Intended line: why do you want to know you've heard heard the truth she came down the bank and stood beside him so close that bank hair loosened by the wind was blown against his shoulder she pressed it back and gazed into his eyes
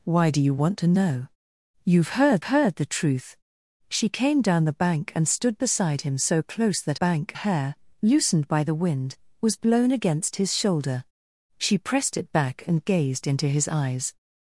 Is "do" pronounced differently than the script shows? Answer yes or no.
no